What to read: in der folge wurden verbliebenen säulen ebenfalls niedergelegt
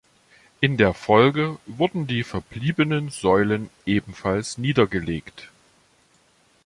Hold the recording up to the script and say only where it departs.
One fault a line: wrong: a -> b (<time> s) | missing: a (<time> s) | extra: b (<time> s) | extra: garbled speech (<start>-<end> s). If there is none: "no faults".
extra: die (2.1 s)